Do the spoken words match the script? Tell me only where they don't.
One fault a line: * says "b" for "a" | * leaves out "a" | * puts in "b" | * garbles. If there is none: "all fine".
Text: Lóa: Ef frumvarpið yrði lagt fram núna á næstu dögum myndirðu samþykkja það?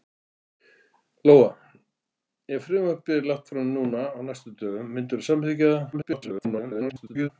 * garbles